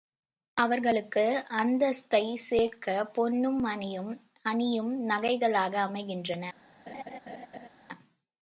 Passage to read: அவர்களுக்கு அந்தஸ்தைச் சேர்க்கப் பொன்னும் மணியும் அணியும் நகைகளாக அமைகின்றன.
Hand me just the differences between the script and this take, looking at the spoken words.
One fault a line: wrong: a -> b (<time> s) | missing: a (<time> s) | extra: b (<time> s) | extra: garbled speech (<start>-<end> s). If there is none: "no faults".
no faults